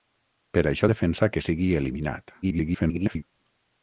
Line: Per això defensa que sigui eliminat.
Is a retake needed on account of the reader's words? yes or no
yes